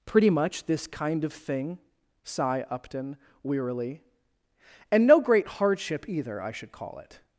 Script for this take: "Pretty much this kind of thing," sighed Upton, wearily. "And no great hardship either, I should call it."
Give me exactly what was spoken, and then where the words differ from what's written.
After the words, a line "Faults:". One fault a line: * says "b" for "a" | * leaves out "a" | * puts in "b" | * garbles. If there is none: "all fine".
"Pretty much this kind of thing," sigh Upton, wearily. "And no great hardship either, I should call it."
Faults:
* says "sigh" for "sighed"